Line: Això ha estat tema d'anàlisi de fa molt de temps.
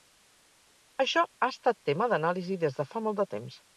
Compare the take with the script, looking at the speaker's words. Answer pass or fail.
fail